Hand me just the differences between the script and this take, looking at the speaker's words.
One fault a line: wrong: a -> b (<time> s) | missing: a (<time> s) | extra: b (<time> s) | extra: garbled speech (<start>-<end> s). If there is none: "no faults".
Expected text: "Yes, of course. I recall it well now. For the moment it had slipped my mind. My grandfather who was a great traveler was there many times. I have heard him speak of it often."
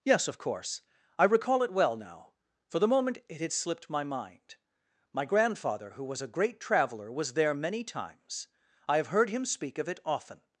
no faults